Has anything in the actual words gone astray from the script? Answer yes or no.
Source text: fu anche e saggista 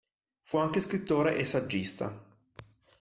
yes